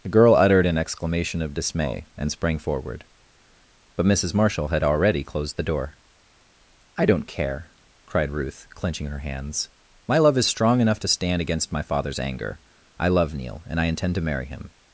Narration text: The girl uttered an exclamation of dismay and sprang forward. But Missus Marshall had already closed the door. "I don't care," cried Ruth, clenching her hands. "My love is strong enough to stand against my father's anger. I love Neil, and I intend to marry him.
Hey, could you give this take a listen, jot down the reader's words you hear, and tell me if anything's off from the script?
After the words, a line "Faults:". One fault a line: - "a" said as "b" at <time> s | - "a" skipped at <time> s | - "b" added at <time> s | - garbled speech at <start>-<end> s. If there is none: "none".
The girl uttered an exclamation of dismay and sprang forward. But Missus Marshall had already closed the door. "I don't care," cried Ruth, clenching her hands. "My love is strong enough to stand against my father's anger. I love Neil, and I intend to marry him.
Faults:
none